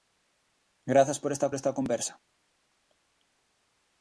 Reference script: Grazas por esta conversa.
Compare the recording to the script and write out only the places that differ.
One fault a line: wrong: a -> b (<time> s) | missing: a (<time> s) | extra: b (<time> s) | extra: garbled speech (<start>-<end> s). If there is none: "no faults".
extra: esta (1.5 s)